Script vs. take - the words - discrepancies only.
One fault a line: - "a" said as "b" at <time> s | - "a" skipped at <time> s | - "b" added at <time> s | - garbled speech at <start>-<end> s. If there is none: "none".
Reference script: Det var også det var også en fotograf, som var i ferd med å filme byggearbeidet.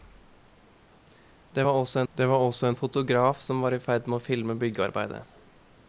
none